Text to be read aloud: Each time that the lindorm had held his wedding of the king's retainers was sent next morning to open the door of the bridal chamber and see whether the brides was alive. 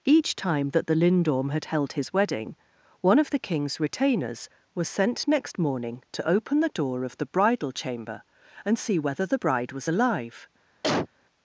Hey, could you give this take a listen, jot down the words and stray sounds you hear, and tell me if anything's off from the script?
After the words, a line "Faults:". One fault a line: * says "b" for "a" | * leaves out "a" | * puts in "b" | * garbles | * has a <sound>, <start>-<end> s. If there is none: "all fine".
Each time that the lindorm had held his wedding one of the king's retainers was sent next morning to open the door of the bridal chamber and see whether the bride was alive.
Faults:
* puts in "one"
* says "bride" for "brides"
* has a cough, 10.8-11.1 s